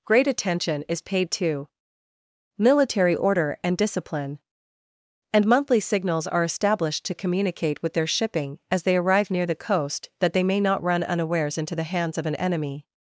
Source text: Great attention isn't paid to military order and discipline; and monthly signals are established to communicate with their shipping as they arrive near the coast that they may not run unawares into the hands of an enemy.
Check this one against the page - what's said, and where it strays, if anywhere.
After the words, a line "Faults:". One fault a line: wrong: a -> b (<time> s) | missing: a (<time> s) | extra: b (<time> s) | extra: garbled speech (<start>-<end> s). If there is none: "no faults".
Great attention is paid to military order and discipline; and monthly signals are established to communicate with their shipping as they arrive near the coast that they may not run unawares into the hands of an enemy.
Faults:
wrong: isn't -> is (0.9 s)